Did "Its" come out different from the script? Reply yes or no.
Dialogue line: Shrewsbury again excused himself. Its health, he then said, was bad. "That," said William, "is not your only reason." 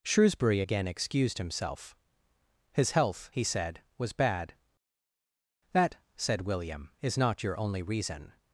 yes